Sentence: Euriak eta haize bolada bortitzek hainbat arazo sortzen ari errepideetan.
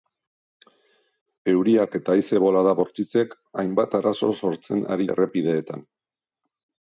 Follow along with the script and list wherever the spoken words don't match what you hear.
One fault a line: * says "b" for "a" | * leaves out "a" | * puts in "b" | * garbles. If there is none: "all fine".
all fine